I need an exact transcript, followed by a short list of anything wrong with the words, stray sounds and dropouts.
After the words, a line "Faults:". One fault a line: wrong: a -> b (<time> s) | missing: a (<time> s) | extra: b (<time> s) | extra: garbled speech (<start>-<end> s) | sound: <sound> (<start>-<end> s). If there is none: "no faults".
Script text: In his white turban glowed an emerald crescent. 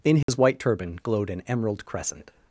In his white turban glowed an emerald crescent.
Faults:
sound: dropout (0.2-0.3 s)